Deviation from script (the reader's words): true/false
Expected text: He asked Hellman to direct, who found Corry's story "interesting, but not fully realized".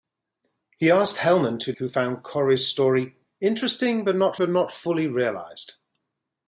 true